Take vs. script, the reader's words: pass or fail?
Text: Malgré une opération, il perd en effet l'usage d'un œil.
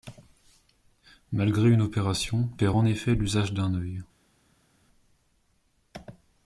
fail